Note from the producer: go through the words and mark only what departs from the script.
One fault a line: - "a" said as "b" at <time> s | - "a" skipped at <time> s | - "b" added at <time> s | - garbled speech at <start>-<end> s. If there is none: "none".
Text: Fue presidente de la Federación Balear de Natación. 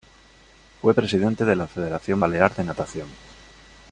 none